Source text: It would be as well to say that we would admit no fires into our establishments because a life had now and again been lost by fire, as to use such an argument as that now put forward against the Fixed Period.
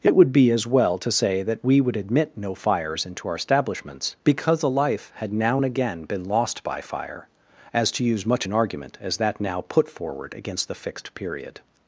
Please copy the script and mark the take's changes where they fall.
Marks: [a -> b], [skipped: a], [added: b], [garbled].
It would be as well to say that we would admit no fires into our establishments because a life had now and again been lost by fire, as to use [such -> much] an argument as that now put forward against the Fixed Period.